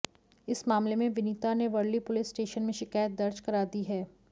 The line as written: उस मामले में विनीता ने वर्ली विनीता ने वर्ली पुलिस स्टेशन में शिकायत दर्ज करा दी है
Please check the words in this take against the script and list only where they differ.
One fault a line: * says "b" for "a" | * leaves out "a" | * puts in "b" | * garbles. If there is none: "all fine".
* says "इस" for "उस"
* leaves out "विनीता ने वर्ली"